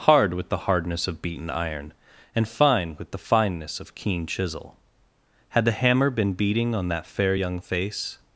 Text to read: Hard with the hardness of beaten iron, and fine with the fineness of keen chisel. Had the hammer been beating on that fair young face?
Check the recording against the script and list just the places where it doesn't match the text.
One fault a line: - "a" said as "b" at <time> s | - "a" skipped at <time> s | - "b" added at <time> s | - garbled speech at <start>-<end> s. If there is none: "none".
none